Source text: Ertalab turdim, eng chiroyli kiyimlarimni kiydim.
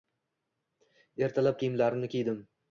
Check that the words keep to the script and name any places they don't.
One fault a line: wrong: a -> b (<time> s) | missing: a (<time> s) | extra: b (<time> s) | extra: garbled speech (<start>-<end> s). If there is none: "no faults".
missing: turdim eng chiroyli (1.6 s)